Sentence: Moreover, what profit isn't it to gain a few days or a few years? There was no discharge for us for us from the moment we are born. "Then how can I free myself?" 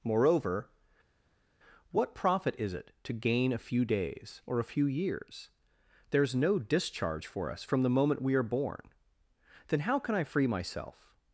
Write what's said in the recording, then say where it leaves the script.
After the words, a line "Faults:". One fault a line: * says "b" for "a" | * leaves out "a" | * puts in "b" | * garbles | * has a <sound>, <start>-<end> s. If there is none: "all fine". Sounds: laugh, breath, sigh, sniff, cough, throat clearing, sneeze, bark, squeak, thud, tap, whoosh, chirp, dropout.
Moreover, what profit is it to gain a few days or a few years? There is no discharge for us from the moment we are born. "Then how can I free myself?"
Faults:
* says "is" for "isn't"
* says "is" for "was"
* leaves out "for us"